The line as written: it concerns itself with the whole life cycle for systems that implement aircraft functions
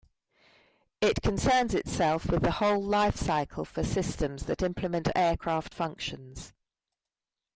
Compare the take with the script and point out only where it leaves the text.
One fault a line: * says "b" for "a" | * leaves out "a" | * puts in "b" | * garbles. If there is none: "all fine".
all fine